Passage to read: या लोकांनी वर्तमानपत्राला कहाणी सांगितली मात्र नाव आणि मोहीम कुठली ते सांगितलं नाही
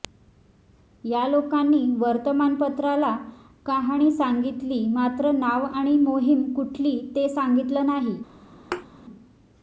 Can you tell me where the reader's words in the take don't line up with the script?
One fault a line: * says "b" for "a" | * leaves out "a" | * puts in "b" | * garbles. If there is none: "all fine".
all fine